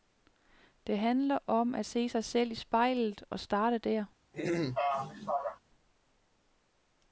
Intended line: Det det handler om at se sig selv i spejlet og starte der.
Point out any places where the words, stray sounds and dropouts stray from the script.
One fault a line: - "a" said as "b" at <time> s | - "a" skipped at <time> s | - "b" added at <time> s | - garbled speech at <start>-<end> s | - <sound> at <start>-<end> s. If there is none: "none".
- "det" skipped at 1.0 s
- throat clearing at 4.3-5.6 s